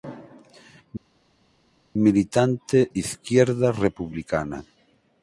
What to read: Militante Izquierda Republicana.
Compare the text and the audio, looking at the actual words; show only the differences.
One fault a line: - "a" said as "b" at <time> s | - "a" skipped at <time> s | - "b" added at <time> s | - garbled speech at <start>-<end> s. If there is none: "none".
none